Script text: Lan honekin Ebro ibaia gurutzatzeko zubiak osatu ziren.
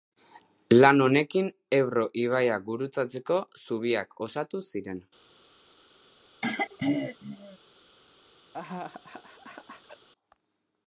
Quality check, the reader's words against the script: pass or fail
pass